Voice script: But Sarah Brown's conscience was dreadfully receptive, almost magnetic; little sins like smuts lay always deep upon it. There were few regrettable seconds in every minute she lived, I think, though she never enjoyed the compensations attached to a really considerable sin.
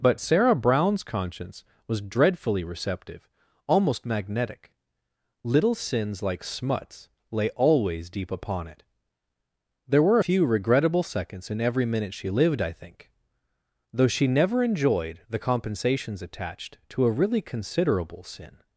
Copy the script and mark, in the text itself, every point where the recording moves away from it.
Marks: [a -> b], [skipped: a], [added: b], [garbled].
But Sarah Brown's conscience was dreadfully receptive, almost magnetic; little sins like smuts lay always deep upon it. There were few regrettable seconds in every minute she lived, I think, though she never enjoyed the compensations attached to a really considerable sin.